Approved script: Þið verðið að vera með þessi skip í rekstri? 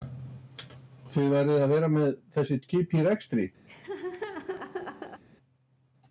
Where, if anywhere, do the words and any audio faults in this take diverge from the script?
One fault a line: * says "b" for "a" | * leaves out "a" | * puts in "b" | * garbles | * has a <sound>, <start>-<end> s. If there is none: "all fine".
* has a laugh, 3.7-5.2 s